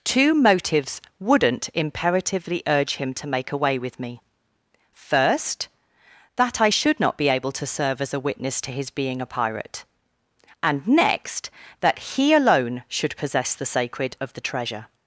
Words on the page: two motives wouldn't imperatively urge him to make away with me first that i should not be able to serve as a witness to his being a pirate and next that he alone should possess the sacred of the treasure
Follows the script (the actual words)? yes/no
yes